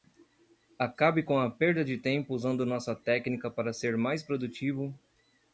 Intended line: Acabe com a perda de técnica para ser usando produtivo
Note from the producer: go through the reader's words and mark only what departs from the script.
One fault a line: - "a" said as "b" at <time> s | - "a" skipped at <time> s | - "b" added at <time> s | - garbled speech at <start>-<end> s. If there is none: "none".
- "tempo usando nossa" added at 1.9 s
- "usando" said as "mais" at 4.0 s